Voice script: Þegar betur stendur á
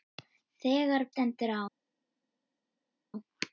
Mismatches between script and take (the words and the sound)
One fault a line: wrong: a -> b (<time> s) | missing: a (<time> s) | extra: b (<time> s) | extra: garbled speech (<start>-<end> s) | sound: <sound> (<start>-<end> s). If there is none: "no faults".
missing: betur (1.1 s)